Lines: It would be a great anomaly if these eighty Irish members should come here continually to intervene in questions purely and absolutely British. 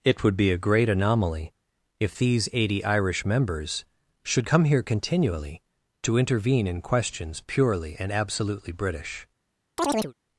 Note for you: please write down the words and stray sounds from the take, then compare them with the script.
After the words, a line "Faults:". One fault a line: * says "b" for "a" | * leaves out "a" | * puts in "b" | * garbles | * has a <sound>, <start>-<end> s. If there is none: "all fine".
It would be a great anomaly if these eighty Irish members should come here continually to intervene in questions purely and absolutely British.
Faults:
* has a chirp, 9.8-10.1 s